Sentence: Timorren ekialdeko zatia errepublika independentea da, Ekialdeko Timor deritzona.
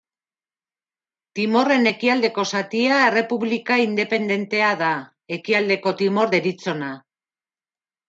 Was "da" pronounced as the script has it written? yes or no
yes